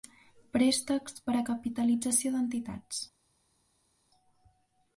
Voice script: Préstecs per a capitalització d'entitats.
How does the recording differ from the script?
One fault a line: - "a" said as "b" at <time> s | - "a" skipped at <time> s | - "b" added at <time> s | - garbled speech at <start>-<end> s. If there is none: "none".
none